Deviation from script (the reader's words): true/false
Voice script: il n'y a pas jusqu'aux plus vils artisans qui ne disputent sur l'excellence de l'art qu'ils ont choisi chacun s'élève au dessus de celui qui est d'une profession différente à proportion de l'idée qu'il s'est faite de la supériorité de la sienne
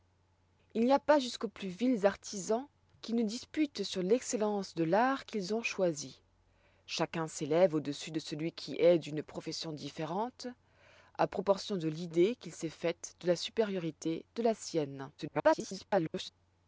true